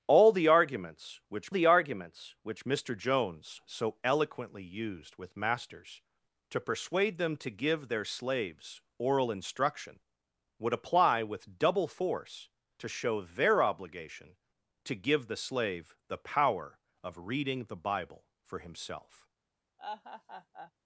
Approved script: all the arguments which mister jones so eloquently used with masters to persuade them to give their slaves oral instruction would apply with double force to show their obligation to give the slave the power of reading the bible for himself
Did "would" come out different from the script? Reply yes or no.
no